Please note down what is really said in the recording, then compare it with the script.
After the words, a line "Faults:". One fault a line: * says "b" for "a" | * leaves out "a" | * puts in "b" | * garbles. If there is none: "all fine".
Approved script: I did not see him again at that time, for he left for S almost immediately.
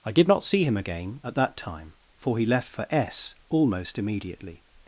I did not see him again at that time, for he left for S almost immediately.
Faults:
all fine